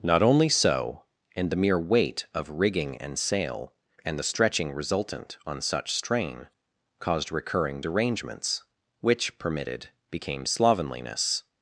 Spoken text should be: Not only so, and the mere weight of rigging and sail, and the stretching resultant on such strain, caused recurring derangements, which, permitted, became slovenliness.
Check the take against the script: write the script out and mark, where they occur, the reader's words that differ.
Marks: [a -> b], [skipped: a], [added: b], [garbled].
Not only so, and the mere weight of rigging and sail, and the stretching resultant on such strain, caused recurring derangements, which, permitted, became slovenliness.